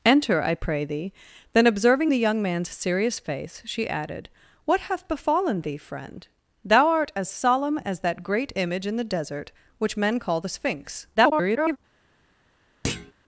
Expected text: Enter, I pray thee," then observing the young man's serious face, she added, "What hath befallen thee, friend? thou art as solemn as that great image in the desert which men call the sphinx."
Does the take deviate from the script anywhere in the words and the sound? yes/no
yes